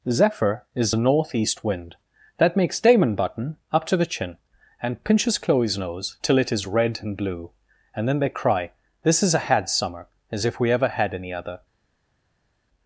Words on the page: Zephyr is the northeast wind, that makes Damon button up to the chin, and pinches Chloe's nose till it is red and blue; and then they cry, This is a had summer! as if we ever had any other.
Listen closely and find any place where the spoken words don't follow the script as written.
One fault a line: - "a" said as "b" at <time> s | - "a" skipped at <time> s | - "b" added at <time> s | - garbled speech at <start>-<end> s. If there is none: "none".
none